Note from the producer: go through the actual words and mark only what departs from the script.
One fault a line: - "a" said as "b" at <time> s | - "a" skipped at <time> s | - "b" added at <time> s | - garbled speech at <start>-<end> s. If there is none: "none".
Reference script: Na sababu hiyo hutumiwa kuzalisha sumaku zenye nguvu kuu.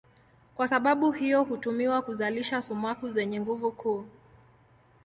- "Na" said as "Kwa" at 0.6 s